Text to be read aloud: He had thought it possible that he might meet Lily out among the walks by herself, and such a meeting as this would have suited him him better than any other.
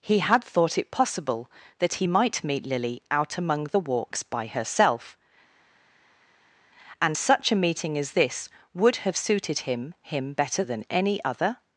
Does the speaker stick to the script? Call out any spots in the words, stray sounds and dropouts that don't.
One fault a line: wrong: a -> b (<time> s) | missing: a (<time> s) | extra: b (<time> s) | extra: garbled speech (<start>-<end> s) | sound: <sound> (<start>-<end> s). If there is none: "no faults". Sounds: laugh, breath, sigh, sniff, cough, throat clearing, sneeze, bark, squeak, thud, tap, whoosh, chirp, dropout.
no faults